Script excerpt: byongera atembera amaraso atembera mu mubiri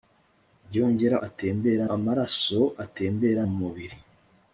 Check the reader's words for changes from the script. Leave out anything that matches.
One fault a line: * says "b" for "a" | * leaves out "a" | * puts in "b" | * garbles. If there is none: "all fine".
all fine